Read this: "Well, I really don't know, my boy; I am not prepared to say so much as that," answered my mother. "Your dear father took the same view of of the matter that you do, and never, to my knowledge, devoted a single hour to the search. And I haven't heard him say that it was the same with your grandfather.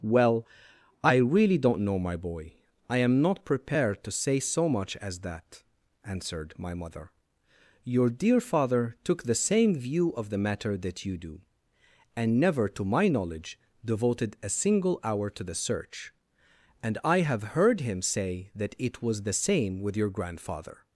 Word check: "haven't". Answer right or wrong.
wrong